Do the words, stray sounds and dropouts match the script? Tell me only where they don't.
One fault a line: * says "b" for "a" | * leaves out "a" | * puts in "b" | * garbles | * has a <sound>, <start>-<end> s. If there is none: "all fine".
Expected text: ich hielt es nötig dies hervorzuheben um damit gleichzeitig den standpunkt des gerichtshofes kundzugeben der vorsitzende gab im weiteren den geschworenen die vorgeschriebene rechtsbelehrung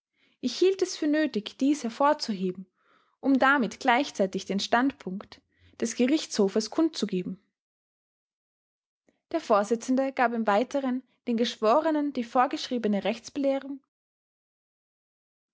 * puts in "für"